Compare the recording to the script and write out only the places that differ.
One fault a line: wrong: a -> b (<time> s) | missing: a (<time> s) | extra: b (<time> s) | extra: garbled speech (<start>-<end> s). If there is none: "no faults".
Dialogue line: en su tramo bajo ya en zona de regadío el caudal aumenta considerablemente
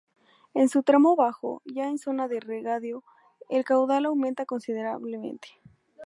no faults